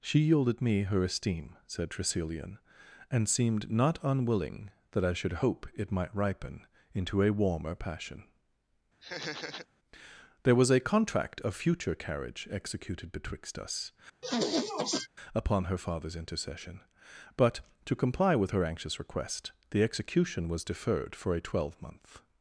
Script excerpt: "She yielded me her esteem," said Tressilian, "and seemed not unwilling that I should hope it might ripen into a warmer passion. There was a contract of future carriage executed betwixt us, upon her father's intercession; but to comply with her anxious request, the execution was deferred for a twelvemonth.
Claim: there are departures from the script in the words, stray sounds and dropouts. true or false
true